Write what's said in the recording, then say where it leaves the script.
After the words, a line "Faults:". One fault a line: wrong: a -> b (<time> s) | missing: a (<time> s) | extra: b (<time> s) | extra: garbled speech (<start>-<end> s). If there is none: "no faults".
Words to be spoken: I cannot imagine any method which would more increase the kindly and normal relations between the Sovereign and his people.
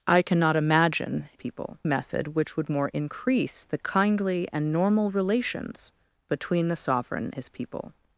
I cannot imagine people method which would more increase the kindly and normal relations between the Sovereign his people.
Faults:
wrong: any -> people (1.3 s)
missing: and (7.3 s)